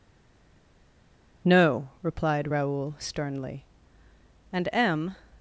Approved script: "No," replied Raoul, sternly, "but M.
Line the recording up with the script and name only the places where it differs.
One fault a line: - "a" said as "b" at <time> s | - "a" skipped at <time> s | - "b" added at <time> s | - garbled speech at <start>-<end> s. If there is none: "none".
- "but" said as "and" at 4.5 s